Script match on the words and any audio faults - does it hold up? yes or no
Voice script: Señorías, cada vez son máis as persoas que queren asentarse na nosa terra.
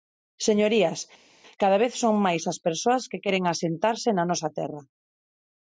yes